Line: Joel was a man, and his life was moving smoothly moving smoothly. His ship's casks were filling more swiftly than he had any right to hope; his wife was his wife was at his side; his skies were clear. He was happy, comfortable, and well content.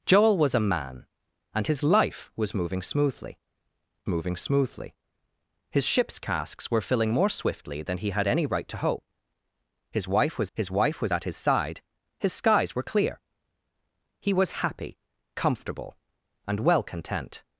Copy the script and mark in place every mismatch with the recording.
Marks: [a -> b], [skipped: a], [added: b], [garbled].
Joel was a man, and his life was moving smoothly moving smoothly. His ship's casks were filling more swiftly than he had any right to hope; his wife was his wife was at his side; his skies were clear. He was happy, comfortable, and well content.